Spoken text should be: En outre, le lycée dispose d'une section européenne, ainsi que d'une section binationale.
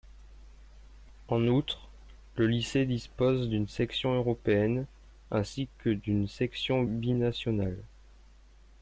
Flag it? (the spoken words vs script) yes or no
no